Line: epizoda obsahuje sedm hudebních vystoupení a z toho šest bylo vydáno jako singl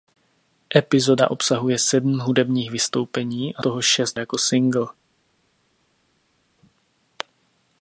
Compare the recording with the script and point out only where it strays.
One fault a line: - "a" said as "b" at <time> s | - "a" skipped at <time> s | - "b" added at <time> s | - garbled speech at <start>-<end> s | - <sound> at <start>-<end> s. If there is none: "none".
- "z" skipped at 3.6 s
- "bylo vydáno" skipped at 4.2 s